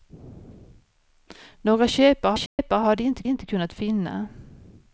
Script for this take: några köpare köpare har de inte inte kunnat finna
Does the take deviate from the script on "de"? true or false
false